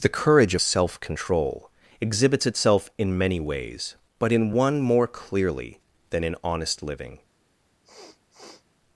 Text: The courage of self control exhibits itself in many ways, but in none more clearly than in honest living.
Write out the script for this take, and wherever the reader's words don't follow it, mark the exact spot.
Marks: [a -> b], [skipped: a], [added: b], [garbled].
The courage of self control exhibits itself in many ways, but in [none -> one] more clearly than in honest living.